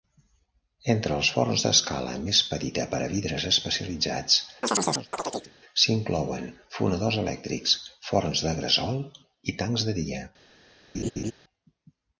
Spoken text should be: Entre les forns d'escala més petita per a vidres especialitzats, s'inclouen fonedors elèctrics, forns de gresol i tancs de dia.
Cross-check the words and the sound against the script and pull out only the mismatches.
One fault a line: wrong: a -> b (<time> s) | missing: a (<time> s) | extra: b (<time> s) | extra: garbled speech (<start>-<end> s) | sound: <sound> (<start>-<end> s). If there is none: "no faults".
wrong: les -> els (1.2 s)
sound: chirp (4.6-5.5 s)
sound: laugh (10.9-11.3 s)